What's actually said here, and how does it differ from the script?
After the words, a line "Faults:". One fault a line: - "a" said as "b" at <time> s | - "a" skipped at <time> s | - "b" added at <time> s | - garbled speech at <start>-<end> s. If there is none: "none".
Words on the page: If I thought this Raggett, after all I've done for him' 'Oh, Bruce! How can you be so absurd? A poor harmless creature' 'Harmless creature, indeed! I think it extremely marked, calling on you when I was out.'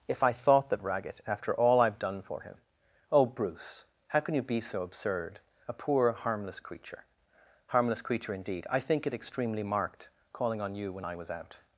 If I thought that Raggett, after all I've done for him' 'Oh, Bruce! How can you be so absurd? A poor harmless creature' 'Harmless creature, indeed! I think it extremely marked, calling on you when I was out.'
Faults:
- "this" said as "that" at 0.7 s